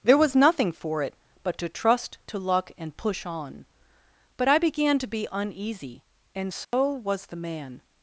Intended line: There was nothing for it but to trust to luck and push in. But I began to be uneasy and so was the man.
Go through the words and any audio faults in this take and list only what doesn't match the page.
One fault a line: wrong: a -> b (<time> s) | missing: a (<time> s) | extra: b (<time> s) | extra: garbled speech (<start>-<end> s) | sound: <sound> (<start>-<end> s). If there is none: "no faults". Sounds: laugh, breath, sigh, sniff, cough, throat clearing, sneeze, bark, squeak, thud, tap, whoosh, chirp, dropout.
wrong: in -> on (3.2 s)
sound: dropout (6.6-6.7 s)